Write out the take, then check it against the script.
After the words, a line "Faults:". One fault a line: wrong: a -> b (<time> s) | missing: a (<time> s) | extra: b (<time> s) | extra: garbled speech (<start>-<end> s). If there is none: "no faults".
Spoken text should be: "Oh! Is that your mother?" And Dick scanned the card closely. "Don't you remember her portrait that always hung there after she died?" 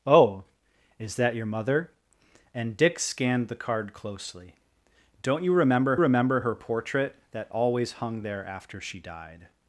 "Oh! Is that your mother?" And Dick scanned the card closely. "Don't you remember remember her portrait that always hung there after she died?"
Faults:
extra: remember (6.0 s)